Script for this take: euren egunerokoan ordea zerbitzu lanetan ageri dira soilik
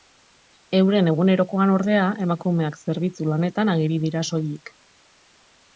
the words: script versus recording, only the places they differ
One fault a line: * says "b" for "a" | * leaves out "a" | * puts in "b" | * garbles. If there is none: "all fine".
* puts in "emakumeak"